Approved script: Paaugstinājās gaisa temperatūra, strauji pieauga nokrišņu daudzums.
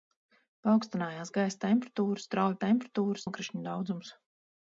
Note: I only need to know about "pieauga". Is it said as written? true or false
false